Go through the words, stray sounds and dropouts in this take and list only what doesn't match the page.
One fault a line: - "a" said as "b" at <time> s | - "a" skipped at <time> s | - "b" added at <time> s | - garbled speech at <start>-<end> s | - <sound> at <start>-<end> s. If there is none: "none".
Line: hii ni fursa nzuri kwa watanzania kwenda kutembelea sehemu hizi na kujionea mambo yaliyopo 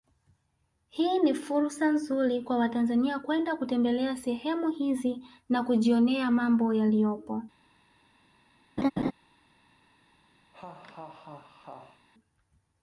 - laugh at 8.8-9.1 s
- laugh at 10.5-12.1 s